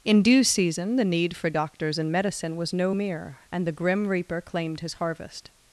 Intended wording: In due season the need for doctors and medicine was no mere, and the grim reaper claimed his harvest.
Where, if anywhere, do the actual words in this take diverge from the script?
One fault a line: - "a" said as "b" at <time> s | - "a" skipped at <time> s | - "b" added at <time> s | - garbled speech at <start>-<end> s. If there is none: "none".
none